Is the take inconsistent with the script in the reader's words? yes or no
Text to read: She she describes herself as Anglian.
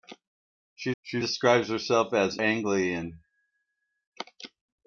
no